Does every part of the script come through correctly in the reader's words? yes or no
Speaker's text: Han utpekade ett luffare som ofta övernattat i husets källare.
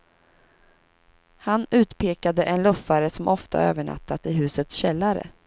no